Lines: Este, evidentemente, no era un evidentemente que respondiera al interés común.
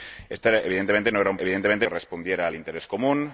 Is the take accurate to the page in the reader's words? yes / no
yes